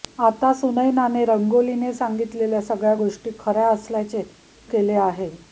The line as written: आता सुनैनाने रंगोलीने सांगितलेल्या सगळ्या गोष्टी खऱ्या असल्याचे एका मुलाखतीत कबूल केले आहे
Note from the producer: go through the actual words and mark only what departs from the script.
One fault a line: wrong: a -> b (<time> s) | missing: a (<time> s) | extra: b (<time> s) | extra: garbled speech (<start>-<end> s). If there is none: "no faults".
missing: एका मुलाखतीत कबूल (4.2 s)